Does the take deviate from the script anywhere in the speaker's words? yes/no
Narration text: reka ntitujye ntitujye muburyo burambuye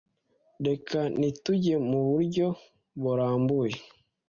yes